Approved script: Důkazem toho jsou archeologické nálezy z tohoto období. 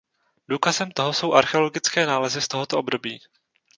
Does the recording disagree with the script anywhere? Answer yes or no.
no